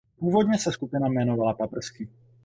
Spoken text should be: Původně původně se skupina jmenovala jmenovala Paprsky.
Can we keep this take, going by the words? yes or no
no